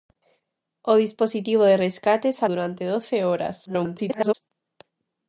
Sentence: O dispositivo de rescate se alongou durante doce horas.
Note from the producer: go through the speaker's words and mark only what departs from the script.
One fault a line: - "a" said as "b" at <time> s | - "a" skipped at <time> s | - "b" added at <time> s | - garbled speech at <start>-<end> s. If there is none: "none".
- "alongou" skipped at 2.4 s
- garbled speech at 3.7-4.3 s